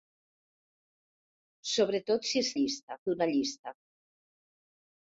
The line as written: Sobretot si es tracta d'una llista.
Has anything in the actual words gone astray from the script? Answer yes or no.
yes